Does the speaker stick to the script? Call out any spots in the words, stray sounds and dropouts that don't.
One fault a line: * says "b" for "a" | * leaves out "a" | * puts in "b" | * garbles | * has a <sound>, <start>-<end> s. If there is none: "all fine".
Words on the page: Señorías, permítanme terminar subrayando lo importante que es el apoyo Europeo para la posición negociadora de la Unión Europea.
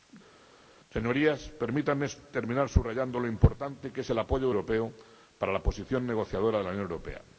all fine